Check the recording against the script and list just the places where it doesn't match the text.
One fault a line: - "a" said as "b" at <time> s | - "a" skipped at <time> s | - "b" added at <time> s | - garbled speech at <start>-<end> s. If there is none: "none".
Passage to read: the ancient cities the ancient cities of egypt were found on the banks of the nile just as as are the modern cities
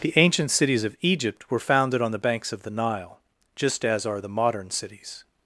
- "the ancient cities" skipped at 0.8 s
- "found" said as "founded" at 1.6 s
- "as" skipped at 4.0 s